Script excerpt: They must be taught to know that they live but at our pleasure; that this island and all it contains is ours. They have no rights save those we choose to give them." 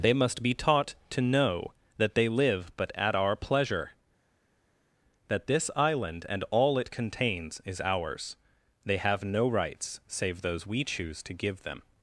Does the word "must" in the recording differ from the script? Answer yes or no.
no